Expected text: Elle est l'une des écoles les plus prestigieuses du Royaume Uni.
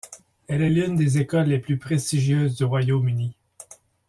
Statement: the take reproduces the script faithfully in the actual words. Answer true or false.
true